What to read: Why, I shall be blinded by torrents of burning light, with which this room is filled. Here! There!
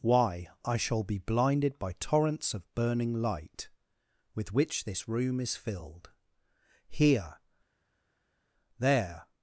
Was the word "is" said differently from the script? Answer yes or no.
no